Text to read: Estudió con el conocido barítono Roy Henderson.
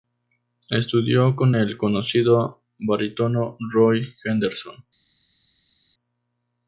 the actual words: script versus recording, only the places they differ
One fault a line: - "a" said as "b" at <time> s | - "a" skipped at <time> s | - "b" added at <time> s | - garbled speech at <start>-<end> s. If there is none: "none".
none